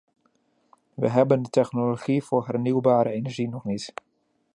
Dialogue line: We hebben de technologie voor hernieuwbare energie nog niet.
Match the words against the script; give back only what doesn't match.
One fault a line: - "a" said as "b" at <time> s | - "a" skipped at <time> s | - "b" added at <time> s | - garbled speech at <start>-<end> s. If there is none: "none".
none